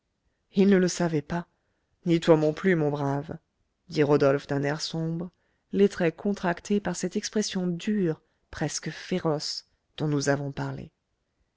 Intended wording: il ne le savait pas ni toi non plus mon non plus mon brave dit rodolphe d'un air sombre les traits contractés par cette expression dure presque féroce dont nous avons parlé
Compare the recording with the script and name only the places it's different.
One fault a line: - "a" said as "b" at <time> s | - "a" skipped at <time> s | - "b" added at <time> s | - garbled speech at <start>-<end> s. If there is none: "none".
- "non plus mon" skipped at 2.9 s